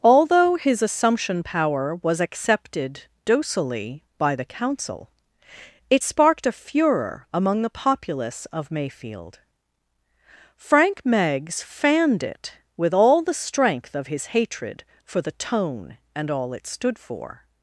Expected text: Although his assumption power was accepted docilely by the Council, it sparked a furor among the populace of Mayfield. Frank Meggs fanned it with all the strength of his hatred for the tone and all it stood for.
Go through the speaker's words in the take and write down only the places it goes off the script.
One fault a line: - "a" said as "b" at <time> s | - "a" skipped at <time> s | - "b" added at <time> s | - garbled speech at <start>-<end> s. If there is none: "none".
none